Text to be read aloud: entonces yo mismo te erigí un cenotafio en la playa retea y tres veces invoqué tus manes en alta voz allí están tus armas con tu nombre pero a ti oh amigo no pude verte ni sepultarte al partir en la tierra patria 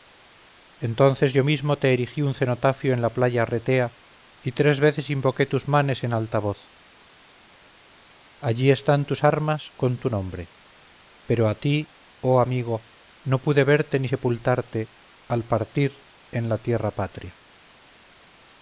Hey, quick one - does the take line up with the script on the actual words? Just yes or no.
yes